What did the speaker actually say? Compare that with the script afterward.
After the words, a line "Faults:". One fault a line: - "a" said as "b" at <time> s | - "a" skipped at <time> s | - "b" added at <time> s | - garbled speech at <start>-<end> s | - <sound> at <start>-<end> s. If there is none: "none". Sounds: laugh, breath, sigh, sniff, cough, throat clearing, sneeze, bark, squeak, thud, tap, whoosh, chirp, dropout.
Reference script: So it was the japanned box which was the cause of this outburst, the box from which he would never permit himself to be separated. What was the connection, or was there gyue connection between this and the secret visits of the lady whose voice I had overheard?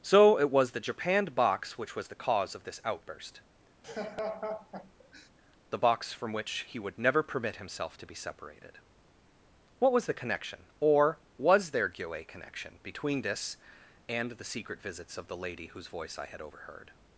So it was the japanned box which was the cause of this outburst, the box from which he would never permit himself to be separated. What was the connection, or was there gyue connection between this and the secret visits of the lady whose voice I had overheard?
Faults:
- laugh at 3.8-5.3 s